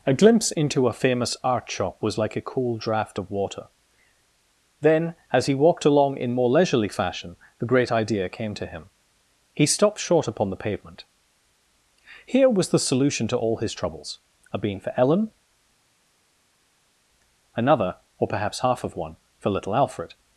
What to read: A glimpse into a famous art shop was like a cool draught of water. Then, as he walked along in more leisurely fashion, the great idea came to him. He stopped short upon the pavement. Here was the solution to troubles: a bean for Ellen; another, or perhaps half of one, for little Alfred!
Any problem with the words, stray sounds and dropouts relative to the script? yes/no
yes